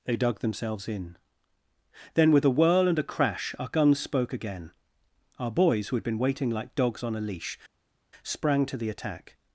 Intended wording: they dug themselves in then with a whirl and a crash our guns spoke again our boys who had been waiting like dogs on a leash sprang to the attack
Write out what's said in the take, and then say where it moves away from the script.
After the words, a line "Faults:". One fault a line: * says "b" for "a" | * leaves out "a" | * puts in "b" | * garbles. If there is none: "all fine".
they dug themselves in then with a whirl and a crash our guns spoke again our boys who had been waiting like dogs on a leash sprang to the attack
Faults:
all fine